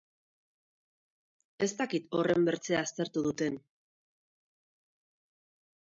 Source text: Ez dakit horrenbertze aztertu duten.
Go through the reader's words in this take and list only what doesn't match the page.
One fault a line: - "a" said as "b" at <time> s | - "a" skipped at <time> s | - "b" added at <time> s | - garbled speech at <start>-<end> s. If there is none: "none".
none